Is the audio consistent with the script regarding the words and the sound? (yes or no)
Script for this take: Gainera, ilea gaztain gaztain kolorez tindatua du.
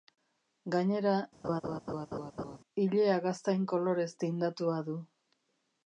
no